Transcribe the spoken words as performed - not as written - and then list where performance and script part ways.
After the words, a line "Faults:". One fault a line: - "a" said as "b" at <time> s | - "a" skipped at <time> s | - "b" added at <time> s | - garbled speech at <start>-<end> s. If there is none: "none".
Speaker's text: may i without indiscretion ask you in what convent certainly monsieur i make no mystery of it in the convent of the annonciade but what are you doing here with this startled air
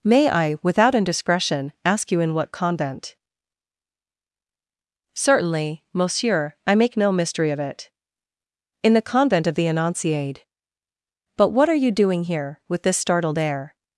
may i without indiscretion ask you in what convent certainly monsieur i make no mystery of it in the convent of the annonciade but what are you doing here with this startled air
Faults:
none